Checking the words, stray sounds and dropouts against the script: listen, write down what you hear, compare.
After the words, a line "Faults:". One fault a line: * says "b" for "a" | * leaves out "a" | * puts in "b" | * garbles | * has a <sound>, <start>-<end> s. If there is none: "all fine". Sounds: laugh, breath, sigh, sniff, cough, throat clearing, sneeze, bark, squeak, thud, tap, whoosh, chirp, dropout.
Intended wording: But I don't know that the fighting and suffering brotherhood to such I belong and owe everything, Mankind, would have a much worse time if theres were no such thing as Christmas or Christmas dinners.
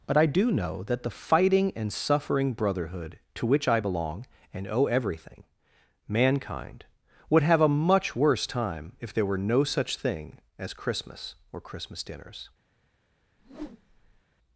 But I do know that the fighting and suffering brotherhood to which I belong and owe everything, Mankind, would have a much worse time if there were no such thing as Christmas or Christmas dinners.
Faults:
* says "do" for "don't"
* says "which" for "such"
* says "there" for "theres"
* has a whoosh, 13.4-14.2 s